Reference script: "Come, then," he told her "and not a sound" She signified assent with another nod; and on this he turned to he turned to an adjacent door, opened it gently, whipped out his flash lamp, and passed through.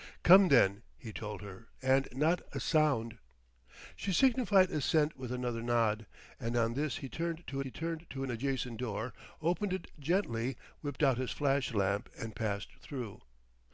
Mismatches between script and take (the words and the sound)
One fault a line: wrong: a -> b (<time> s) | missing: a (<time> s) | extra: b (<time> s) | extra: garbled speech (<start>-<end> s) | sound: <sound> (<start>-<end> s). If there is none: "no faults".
no faults